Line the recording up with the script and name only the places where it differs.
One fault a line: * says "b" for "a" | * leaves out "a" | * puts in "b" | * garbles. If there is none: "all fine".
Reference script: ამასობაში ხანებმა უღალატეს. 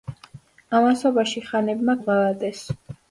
all fine